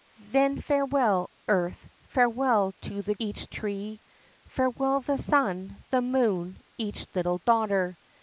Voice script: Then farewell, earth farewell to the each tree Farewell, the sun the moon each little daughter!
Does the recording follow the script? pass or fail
pass